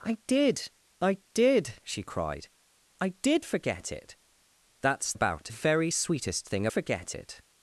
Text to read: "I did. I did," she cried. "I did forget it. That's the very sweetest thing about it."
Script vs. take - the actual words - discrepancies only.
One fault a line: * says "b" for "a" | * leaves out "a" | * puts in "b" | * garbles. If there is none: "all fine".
* says "about" for "the"
* says "forget" for "about"